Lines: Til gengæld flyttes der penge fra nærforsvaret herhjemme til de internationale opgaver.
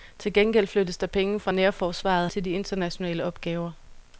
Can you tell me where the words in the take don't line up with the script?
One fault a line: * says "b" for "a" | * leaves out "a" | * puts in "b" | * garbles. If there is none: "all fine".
* leaves out "herhjemme"